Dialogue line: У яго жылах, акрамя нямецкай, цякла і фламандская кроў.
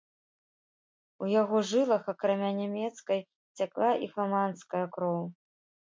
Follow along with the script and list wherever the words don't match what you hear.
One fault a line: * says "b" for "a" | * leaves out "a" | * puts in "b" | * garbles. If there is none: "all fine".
all fine